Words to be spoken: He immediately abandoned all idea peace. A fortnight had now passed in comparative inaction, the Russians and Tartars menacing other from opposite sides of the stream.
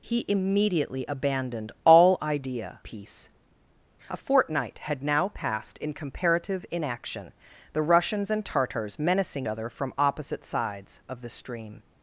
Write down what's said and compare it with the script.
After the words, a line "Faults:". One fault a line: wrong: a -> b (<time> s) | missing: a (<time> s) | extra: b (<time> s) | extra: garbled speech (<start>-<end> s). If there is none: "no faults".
He immediately abandoned all idea peace. A fortnight had now passed in comparative inaction, the Russians and Tartars menacing other from opposite sides of the stream.
Faults:
no faults